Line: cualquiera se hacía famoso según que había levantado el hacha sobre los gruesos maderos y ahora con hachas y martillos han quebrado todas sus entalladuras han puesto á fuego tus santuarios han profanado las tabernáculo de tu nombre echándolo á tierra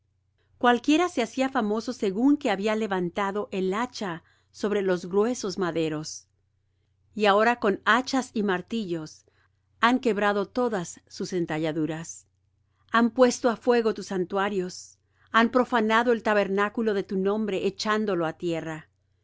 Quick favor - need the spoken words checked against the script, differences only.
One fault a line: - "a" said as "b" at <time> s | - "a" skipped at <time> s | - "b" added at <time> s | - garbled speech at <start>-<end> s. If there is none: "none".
- "las" said as "el" at 16.1 s